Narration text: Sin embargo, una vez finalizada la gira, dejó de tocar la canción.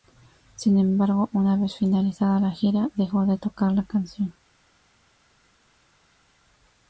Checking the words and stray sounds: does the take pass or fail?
pass